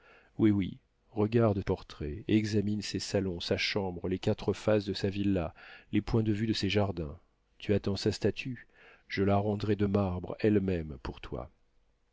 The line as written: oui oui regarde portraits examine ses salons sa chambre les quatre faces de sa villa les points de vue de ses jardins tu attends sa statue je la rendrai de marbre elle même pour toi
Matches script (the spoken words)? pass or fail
pass